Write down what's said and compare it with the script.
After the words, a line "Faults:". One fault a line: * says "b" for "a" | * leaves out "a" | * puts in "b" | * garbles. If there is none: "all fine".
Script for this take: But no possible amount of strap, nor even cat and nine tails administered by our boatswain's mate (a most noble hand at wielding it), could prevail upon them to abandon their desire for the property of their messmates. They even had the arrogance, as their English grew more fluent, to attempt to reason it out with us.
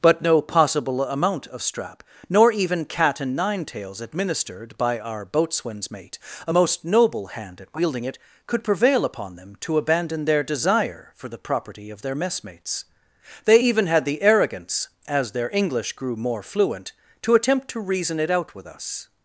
But no possible amount of strap, nor even cat and nine tails administered by our boatswain's mate (a most noble hand at wielding it), could prevail upon them to abandon their desire for the property of their messmates. They even had the arrogance, as their English grew more fluent, to attempt to reason it out with us.
Faults:
all fine